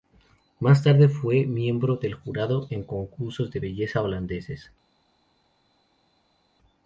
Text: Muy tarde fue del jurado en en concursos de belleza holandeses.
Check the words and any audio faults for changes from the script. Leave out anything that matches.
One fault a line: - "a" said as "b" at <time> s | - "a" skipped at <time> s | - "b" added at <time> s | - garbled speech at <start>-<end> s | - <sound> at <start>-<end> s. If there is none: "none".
- "Muy" said as "Más" at 0.6 s
- "miembro" added at 1.4 s
- "en" skipped at 2.8 s